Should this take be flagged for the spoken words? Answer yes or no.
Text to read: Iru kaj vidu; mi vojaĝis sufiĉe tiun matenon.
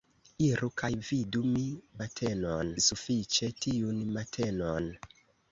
yes